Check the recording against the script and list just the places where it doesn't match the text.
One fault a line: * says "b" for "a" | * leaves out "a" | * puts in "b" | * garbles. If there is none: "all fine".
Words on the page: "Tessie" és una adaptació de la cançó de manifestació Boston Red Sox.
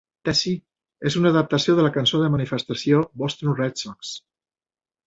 all fine